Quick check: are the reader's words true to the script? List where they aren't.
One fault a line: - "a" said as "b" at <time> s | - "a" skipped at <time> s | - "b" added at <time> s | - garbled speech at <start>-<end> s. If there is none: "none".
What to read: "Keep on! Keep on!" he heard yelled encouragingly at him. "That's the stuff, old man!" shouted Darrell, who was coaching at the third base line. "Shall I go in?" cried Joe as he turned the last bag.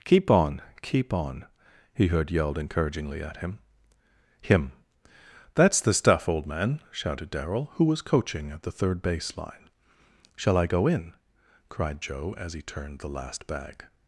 - "him" added at 4.4 s